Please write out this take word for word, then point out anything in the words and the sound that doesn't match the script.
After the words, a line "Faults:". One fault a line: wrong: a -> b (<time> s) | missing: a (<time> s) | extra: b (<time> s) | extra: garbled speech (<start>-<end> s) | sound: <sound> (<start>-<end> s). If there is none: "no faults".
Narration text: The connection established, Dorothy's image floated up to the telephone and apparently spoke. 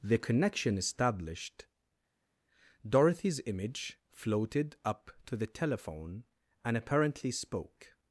The connection established, Dorothy's image floated up to the telephone and apparently spoke.
Faults:
no faults